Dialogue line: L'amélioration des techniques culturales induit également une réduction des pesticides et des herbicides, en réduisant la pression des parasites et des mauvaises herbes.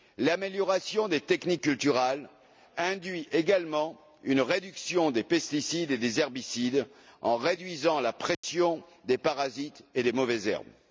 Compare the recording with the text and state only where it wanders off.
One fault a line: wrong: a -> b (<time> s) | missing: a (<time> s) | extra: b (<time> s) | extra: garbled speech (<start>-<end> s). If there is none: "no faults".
no faults